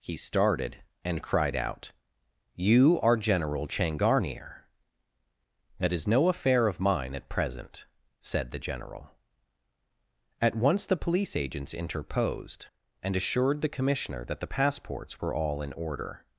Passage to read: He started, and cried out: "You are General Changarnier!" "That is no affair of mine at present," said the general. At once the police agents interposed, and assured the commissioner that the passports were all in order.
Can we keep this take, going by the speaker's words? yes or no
yes